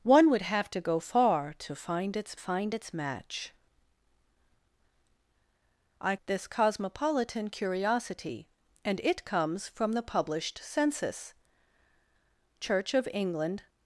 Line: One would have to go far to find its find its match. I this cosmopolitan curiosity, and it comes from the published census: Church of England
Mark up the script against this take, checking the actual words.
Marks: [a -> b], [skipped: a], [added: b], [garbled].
One would have to go far to find its find its match. I this cosmopolitan curiosity, and it comes from the published census: Church of England